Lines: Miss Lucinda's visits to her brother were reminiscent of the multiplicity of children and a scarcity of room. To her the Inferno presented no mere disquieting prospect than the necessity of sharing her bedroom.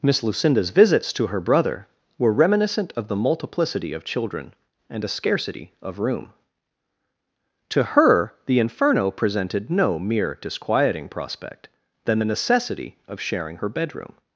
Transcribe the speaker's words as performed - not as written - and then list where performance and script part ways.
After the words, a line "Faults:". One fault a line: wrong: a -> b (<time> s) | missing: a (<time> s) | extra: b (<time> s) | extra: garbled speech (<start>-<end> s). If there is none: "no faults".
Miss Lucinda's visits to her brother were reminiscent of the multiplicity of children and a scarcity of room. To her the Inferno presented no mere disquieting prospect than the necessity of sharing her bedroom.
Faults:
no faults